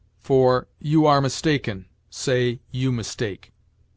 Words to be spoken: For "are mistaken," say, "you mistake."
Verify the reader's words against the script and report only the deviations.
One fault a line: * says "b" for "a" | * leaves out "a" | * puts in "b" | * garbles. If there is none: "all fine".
* puts in "you"